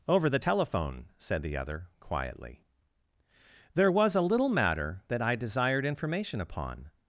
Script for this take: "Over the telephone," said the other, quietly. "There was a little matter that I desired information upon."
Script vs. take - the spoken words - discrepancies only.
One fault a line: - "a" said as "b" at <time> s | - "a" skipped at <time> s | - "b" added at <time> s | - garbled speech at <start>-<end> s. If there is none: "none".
none